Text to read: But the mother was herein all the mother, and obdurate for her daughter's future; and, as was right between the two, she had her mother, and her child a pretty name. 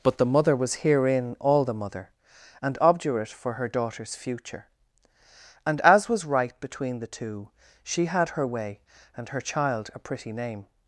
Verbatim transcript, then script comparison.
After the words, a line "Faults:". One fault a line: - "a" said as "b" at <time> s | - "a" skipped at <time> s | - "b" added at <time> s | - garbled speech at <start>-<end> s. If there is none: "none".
But the mother was herein all the mother, and obdurate for her daughter's future; and, as was right between the two, she had her way, and her child a pretty name.
Faults:
- "mother" said as "way" at 8.5 s